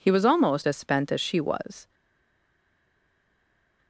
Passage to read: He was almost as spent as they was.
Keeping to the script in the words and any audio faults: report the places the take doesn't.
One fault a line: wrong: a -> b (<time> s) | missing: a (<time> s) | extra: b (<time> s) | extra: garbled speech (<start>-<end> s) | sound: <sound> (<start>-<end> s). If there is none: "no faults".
wrong: they -> she (1.2 s)